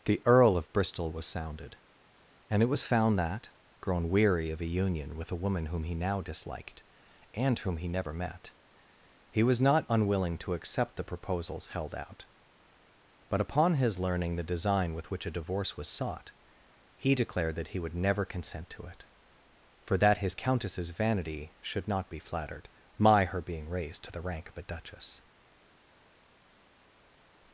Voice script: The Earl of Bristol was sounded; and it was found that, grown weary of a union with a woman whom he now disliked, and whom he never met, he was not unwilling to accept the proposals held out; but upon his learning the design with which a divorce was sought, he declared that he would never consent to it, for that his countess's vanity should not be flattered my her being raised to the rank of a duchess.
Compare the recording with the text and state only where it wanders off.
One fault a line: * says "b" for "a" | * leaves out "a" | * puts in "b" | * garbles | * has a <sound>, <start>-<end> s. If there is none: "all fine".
all fine